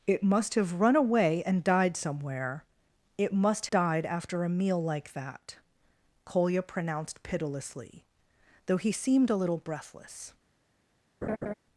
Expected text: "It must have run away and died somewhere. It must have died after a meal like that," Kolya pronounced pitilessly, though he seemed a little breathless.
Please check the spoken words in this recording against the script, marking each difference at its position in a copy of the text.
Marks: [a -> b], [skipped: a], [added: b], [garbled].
"It must have run away and died somewhere. It must [skipped: have] died after a meal like that," Kolya pronounced pitilessly, though he seemed a little breathless.